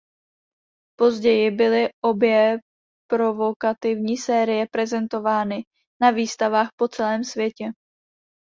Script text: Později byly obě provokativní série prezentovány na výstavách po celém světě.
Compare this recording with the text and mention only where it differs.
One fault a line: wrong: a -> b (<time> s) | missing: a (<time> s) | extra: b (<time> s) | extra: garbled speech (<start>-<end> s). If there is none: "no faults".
no faults